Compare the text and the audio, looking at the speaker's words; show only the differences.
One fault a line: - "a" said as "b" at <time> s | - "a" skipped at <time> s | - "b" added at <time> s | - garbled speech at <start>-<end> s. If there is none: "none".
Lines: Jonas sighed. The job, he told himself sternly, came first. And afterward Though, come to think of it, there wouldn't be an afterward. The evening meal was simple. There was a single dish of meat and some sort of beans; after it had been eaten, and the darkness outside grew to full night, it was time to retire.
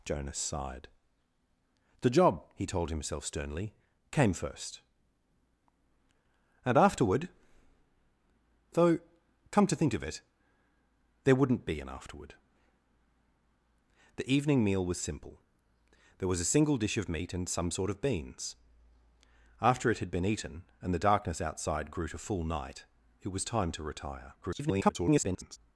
- garbled speech at 24.4-25.6 s